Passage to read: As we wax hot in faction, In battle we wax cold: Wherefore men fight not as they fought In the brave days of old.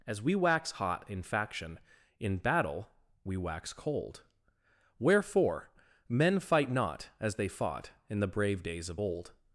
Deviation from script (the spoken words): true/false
false